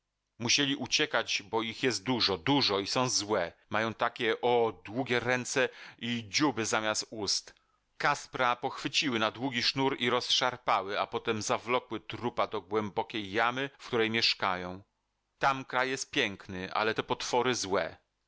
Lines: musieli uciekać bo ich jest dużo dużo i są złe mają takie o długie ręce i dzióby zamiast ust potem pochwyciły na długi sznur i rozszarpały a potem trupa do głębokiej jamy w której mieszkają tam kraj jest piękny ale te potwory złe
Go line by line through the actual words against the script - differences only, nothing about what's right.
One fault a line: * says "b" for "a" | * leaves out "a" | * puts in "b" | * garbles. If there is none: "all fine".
* says "kaspra" for "potem"
* puts in "zawlokły"